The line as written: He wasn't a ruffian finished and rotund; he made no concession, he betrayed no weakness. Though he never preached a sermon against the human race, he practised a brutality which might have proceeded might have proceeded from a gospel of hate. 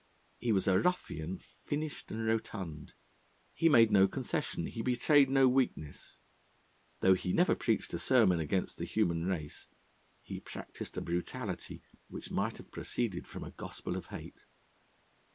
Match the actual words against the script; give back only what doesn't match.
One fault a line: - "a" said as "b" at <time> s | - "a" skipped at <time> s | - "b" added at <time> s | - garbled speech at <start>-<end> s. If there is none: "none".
- "wasn't" said as "was" at 0.5 s
- "might have proceeded" skipped at 13.3 s